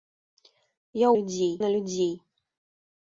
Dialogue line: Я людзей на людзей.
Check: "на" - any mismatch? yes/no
no